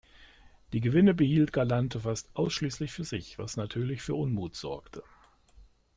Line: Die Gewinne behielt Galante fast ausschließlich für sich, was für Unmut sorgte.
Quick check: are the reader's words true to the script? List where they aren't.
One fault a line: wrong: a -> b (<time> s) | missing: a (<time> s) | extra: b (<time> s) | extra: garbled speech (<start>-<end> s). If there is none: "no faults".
extra: natürlich (3.5 s)